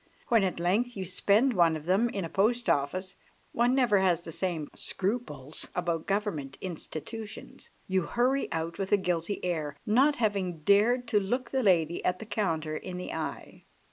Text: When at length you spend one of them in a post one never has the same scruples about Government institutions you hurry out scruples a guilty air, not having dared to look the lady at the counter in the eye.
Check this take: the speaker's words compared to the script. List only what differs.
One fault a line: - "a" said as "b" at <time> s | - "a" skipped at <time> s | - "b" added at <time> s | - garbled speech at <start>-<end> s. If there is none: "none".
- "office" added at 2.7 s
- "scruples" said as "with" at 8.8 s